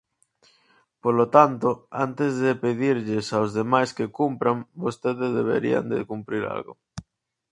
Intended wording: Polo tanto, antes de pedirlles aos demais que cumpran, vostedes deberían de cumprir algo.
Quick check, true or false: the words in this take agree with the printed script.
true